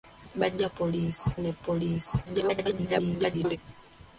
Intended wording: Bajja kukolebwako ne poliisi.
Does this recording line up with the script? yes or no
no